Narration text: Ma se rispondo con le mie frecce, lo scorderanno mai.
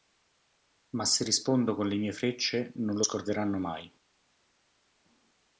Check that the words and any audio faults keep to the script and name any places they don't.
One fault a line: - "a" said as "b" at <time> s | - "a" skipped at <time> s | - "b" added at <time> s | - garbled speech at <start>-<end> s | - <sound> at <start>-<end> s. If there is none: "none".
- "non" added at 2.8 s